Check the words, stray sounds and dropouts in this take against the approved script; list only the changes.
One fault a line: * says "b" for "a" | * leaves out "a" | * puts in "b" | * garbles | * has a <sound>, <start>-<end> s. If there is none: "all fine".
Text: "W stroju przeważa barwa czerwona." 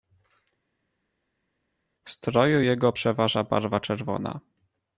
* puts in "jego"